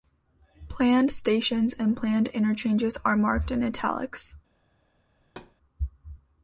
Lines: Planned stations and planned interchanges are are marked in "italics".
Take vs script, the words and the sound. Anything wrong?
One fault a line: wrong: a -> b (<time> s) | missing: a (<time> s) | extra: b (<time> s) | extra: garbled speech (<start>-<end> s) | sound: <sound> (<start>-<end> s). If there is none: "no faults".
missing: are (3.2 s)
sound: thud (5.2-5.5 s)